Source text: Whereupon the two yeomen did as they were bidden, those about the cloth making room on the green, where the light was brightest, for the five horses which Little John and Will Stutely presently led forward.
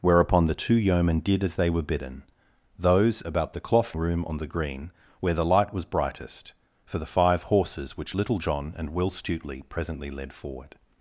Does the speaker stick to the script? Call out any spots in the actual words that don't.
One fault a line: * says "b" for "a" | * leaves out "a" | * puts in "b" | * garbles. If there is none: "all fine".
* leaves out "making"